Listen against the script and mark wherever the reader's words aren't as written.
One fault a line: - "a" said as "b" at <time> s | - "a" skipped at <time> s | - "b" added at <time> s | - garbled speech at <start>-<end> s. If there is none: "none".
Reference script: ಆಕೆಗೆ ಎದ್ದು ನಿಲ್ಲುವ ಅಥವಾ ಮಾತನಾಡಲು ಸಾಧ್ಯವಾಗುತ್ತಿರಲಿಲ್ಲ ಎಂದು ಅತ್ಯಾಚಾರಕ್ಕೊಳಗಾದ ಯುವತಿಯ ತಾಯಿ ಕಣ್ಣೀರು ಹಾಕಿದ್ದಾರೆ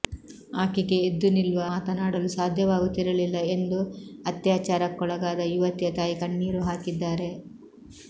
- "ಅಥವಾ" skipped at 1.6 s